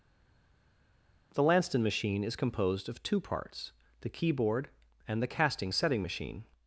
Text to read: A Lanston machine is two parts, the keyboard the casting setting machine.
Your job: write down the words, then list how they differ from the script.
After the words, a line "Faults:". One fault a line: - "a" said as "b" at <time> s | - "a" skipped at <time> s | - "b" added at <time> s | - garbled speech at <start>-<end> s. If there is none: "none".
The Lanston machine is composed of two parts, the keyboard and the casting setting machine.
Faults:
- "A" said as "The" at 1.3 s
- "composed of" added at 2.3 s
- "and" added at 5.1 s